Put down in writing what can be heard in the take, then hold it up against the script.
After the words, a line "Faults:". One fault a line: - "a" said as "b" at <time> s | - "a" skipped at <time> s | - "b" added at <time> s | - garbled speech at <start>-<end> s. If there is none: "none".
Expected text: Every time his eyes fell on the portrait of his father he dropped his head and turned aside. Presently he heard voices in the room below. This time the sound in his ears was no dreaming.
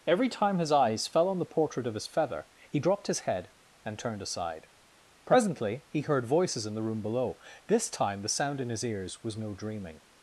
Every time his eyes fell on the portrait of his feather he dropped his head and turned aside. Presently he heard voices in the room below. This time the sound in his ears was no dreaming.
Faults:
- "father" said as "feather" at 2.1 s